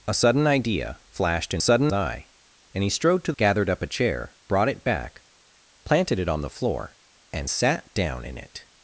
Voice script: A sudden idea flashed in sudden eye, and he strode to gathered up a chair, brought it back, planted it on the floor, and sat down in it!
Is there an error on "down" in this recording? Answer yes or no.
no